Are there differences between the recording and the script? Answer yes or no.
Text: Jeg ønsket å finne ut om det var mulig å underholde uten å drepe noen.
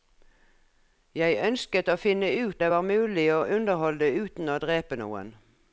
yes